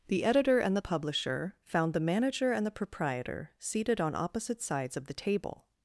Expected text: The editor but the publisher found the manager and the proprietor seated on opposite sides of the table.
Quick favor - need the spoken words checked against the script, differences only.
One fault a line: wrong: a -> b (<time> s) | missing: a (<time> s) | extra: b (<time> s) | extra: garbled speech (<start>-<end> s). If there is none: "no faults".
wrong: but -> and (0.6 s)